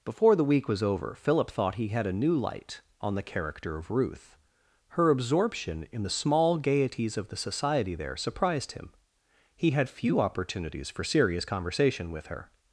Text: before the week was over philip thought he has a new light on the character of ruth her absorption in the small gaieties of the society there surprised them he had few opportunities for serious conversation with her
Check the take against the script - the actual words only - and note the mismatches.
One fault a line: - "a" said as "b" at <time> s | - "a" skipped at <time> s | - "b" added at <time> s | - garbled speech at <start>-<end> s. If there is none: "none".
- "has" said as "had" at 1.9 s
- "them" said as "him" at 8.7 s